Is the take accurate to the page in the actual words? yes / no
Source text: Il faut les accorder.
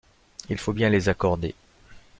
no